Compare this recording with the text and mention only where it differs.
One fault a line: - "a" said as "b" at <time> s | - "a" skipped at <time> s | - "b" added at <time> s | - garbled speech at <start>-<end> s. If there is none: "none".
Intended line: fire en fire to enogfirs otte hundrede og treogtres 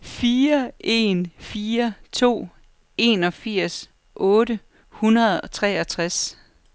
none